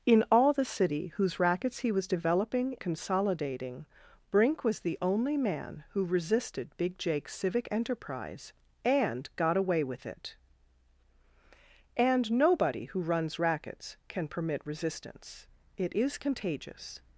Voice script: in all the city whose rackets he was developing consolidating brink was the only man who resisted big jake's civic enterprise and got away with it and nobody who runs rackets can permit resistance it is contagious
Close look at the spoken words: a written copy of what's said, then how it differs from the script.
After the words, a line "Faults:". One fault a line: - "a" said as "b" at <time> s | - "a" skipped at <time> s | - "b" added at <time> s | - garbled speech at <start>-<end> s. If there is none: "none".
in all the city whose rackets he was developing consolidating brink was the only man who resisted big jake's civic enterprise and got away with it and nobody who runs rackets can permit resistance it is contagious
Faults:
none